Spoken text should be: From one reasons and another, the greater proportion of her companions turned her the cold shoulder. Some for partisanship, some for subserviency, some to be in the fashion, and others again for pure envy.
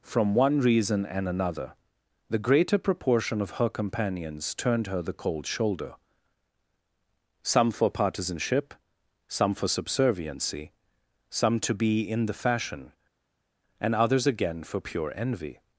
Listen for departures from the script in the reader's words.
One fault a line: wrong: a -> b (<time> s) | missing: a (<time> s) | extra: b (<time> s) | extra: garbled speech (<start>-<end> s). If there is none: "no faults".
wrong: reasons -> reason (0.6 s)